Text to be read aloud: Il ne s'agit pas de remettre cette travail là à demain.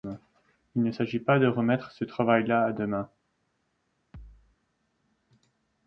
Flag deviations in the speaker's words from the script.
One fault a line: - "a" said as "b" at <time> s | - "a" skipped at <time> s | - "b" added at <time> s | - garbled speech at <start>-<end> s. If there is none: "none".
- "cette" said as "ce" at 1.9 s